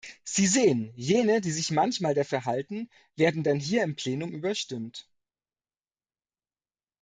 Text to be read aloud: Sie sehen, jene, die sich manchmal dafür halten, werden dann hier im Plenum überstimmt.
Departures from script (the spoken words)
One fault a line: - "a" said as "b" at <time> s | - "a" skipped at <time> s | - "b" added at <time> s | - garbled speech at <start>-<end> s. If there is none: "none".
none